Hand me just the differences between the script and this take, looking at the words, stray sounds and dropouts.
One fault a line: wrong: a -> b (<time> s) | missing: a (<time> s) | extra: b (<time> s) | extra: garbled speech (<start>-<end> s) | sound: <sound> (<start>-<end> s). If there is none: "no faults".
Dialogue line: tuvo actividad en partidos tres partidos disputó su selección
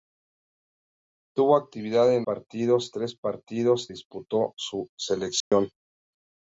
sound: dropout (5.4-5.5 s)